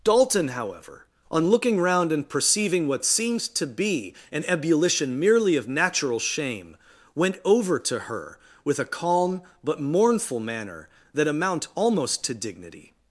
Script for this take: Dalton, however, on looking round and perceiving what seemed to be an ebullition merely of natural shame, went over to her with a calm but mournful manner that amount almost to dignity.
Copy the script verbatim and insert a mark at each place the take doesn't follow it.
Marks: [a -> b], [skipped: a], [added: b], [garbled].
Dalton, however, on looking round and perceiving what seemed to be an ebullition merely of natural shame, went over to her with a calm but mournful manner that amount almost to dignity.